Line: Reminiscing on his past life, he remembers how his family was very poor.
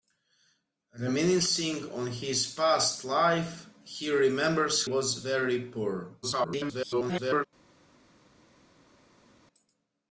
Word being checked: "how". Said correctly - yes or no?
no